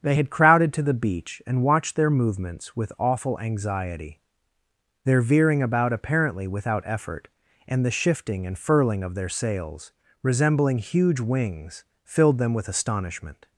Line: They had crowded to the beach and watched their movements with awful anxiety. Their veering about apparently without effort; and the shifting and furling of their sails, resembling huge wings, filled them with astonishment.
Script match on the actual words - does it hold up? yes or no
yes